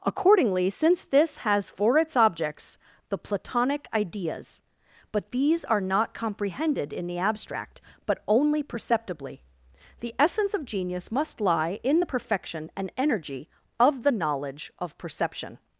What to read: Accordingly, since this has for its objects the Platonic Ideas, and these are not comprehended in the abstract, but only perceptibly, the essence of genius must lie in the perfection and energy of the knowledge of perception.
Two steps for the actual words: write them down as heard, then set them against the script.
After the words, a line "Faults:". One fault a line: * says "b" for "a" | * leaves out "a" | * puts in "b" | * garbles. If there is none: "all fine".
Accordingly, since this has for its objects the Platonic Ideas, but these are not comprehended in the abstract, but only perceptibly, the essence of genius must lie in the perfection and energy of the knowledge of perception.
Faults:
* says "but" for "and"